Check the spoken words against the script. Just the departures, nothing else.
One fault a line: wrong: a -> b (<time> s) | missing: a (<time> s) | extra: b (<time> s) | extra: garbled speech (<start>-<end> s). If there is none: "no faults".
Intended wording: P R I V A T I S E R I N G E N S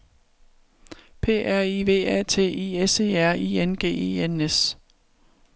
no faults